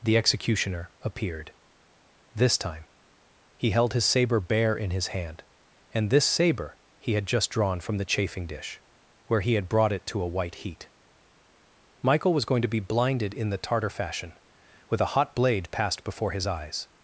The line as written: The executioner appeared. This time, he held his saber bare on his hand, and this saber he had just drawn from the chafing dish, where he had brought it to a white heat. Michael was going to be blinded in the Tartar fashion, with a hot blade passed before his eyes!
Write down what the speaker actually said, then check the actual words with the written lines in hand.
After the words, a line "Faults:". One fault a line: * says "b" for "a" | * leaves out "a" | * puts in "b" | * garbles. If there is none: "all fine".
The executioner appeared. This time, he held his saber bare in his hand, and this saber he had just drawn from the chafing dish, where he had brought it to a white heat. Michael was going to be blinded in the Tartar fashion, with a hot blade passed before his eyes!
Faults:
* says "in" for "on"